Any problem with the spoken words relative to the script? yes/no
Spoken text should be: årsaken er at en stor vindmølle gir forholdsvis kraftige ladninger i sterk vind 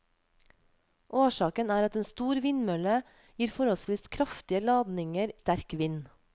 yes